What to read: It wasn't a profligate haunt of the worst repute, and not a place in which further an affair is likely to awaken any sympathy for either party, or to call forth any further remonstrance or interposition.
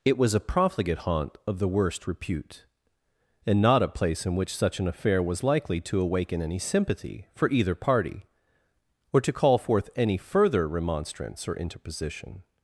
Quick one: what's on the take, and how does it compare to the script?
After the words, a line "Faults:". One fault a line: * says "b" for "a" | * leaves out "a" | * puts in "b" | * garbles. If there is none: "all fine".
It was a profligate haunt of the worst repute, and not a place in which such an affair was likely to awaken any sympathy for either party, or to call forth any further remonstrance or interposition.
Faults:
* says "was" for "wasn't"
* says "such" for "further"
* says "was" for "is"